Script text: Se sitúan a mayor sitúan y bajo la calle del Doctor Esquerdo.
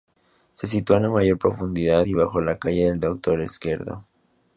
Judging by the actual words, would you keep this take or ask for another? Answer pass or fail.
fail